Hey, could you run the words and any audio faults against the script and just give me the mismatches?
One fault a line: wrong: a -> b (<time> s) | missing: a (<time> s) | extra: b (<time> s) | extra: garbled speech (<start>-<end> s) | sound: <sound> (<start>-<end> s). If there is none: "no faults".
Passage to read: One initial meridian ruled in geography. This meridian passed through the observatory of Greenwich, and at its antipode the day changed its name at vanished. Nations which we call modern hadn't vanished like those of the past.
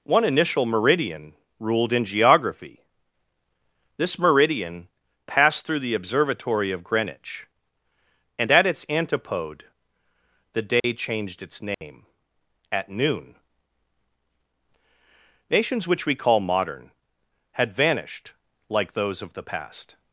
sound: dropout (10.8-10.8 s)
sound: dropout (11.7-11.8 s)
wrong: vanished -> noon (12.9 s)
wrong: hadn't -> had (17.5 s)